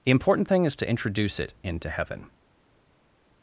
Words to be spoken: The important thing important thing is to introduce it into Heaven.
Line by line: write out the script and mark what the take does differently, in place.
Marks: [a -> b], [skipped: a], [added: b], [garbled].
The important thing [skipped: important thing] is to introduce it into Heaven.